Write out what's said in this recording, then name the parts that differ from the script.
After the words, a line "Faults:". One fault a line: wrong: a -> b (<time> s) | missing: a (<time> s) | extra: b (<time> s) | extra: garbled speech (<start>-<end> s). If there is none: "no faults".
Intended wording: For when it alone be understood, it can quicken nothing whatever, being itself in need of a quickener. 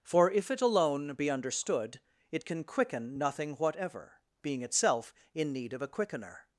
For if it alone be understood, it can quicken nothing whatever, being itself in need of a quickener.
Faults:
wrong: when -> if (0.3 s)